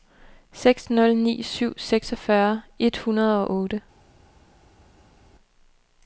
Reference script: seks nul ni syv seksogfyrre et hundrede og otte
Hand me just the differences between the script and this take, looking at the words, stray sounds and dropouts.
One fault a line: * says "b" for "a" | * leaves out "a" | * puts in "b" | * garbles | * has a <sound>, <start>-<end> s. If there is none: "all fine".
all fine